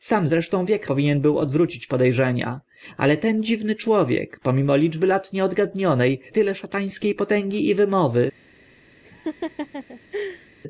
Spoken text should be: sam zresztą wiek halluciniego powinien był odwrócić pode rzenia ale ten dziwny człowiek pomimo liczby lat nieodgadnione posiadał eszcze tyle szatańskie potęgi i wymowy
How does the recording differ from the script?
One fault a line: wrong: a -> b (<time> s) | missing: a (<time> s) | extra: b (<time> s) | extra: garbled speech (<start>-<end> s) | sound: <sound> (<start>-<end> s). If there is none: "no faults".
missing: halluciniego (0.9 s)
missing: posiadał eszcze (6.1 s)
sound: laugh (9.0-10.5 s)